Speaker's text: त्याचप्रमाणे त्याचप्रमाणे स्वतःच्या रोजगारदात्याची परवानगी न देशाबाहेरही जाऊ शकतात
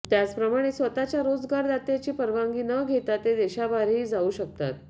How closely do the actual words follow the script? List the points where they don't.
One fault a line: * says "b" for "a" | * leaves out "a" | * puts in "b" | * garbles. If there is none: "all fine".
* leaves out "त्याचप्रमाणे"
* puts in "घेता ते"